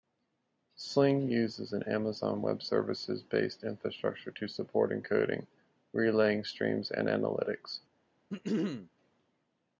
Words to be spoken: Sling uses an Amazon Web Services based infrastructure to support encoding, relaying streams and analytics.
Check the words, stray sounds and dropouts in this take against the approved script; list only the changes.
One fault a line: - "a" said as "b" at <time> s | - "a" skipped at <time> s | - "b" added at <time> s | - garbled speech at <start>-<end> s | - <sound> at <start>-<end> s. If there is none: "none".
- throat clearing at 8.3-8.9 s